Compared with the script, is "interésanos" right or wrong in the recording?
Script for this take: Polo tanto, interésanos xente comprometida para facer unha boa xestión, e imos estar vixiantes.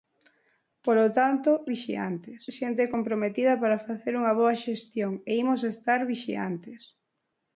wrong